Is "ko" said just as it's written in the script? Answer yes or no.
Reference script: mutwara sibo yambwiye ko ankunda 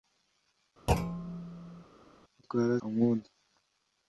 no